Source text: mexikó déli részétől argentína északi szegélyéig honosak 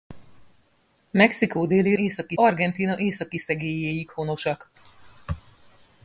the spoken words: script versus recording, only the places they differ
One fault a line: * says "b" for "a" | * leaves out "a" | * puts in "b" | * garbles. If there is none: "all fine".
* says "északi" for "részétől"